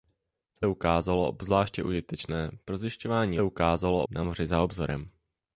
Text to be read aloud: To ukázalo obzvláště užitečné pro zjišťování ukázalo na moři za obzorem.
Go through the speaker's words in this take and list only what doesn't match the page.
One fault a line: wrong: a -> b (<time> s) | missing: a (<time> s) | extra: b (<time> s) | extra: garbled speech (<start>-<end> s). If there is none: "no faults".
no faults